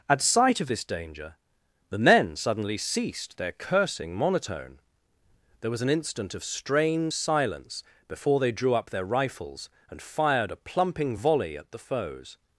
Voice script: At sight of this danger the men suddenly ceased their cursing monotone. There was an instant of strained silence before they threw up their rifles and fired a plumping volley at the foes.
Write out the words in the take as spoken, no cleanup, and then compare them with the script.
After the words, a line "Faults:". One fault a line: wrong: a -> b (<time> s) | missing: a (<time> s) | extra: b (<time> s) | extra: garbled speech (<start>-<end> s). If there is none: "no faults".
At sight of this danger the men suddenly ceased their cursing monotone. There was an instant of strained silence before they drew up their rifles and fired a plumping volley at the foes.
Faults:
wrong: threw -> drew (8.5 s)